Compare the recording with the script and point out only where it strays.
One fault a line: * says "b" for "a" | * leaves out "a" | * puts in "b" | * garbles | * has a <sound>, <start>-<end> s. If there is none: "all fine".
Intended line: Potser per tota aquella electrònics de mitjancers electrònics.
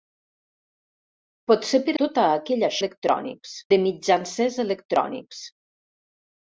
all fine